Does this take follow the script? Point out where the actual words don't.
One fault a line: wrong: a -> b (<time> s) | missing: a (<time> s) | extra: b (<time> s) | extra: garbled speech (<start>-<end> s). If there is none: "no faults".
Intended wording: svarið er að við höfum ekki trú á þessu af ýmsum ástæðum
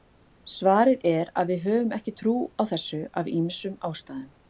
no faults